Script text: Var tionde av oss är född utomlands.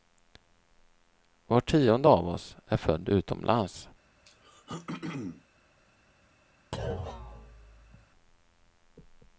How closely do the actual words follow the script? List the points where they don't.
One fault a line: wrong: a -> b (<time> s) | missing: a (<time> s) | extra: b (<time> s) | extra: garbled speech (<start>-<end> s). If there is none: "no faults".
no faults